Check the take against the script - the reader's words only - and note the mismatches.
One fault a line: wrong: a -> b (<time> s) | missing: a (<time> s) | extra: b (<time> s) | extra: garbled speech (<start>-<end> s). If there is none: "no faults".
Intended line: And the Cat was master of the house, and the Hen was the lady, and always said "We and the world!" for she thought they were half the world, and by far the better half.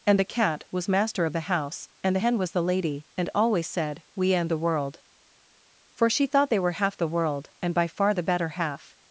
no faults